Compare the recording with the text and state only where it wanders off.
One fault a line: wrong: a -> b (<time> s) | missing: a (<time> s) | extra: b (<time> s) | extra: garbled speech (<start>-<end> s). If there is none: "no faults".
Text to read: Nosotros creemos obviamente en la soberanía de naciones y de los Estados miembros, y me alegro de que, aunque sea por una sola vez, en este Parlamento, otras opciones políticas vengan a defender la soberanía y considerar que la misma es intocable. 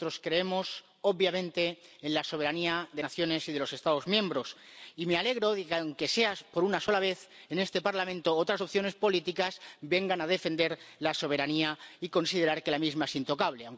no faults